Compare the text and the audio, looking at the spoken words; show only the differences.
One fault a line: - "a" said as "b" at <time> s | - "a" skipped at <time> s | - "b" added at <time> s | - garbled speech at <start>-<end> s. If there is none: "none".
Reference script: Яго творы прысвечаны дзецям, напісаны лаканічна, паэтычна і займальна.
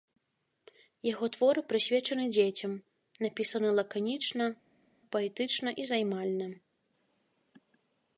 none